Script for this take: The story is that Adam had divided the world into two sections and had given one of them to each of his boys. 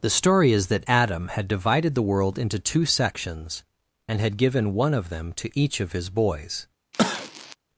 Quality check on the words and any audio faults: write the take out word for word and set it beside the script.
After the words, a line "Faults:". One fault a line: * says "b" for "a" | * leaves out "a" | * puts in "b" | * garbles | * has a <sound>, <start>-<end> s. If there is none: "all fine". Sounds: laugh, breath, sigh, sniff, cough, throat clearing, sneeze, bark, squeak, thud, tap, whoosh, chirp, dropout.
The story is that Adam had divided the world into two sections and had given one of them to each of his boys.
Faults:
* has a cough, 6.9-7.6 s